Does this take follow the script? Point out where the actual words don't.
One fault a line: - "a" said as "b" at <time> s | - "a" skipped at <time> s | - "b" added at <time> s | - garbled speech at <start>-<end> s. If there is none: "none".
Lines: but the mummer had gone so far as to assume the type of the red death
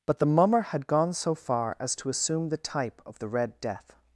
none